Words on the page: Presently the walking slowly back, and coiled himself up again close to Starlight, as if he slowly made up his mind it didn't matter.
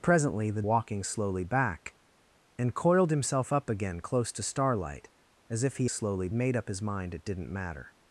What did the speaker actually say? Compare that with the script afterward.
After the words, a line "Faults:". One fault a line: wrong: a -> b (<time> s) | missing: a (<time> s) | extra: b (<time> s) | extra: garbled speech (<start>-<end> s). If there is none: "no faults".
Presently the walking slowly back, and coiled himself up again close to Starlight, as if he slowly made up his mind it didn't matter.
Faults:
no faults